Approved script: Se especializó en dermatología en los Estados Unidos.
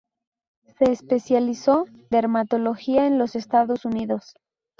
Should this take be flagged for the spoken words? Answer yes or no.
yes